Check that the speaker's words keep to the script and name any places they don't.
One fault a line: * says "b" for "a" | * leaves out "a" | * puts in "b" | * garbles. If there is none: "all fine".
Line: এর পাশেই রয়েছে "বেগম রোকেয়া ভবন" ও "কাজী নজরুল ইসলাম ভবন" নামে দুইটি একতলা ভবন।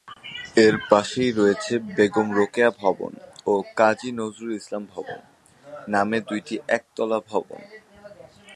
all fine